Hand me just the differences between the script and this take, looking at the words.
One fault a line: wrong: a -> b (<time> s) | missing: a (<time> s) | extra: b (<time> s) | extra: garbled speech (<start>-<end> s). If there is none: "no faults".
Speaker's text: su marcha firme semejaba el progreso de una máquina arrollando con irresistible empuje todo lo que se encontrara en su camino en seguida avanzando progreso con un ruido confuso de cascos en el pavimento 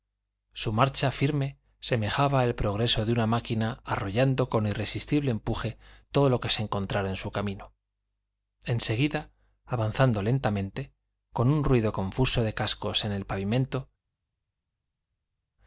wrong: progreso -> lentamente (10.2 s)